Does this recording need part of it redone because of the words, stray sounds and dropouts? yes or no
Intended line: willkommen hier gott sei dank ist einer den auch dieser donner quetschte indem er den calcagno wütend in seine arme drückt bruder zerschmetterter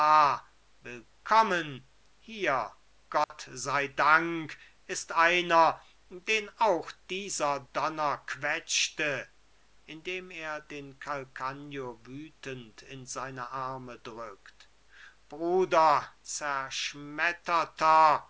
yes